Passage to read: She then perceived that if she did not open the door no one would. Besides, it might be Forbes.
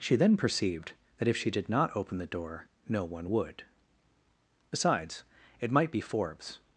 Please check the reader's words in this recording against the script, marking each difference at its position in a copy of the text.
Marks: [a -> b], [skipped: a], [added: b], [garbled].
She then perceived that if she did not open the door no one would. Besides, it might be Forbes.